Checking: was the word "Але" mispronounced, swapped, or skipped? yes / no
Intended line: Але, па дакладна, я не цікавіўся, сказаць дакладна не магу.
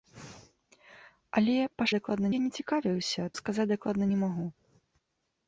no